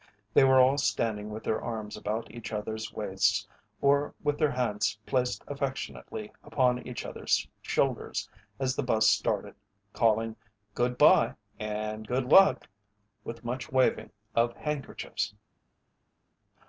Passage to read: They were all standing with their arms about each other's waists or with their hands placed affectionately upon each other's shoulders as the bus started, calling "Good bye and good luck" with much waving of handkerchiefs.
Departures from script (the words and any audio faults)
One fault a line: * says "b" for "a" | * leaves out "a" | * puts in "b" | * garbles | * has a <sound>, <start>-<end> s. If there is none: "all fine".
all fine